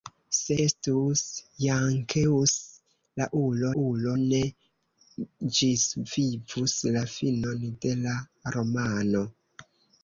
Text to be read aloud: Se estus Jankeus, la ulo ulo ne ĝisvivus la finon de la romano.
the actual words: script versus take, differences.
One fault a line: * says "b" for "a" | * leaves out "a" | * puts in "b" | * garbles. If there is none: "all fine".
all fine